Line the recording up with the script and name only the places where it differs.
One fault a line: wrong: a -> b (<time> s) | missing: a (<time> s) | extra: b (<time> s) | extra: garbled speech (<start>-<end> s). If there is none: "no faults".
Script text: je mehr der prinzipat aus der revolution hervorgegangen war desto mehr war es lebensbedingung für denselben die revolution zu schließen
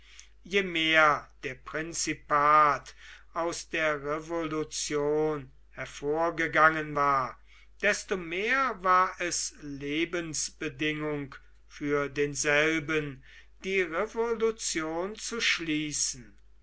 no faults